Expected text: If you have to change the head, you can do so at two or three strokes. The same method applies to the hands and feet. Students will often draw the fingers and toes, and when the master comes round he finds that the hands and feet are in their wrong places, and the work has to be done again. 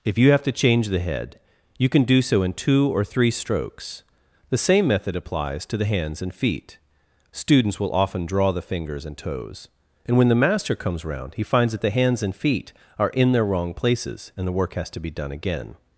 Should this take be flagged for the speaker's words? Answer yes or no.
yes